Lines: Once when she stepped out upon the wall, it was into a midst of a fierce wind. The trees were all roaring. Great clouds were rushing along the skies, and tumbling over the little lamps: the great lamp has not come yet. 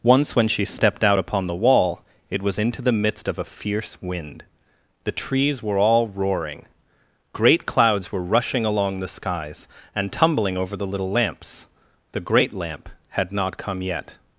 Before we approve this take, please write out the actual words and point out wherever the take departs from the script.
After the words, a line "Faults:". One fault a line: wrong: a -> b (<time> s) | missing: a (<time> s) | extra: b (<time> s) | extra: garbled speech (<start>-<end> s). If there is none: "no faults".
Once when she stepped out upon the wall, it was into the midst of a fierce wind. The trees were all roaring. Great clouds were rushing along the skies, and tumbling over the little lamps: the great lamp had not come yet.
Faults:
wrong: a -> the (2.8 s)
wrong: has -> had (13.1 s)